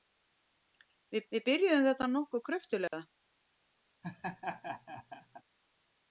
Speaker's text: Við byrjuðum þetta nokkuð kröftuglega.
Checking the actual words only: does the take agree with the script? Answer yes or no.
no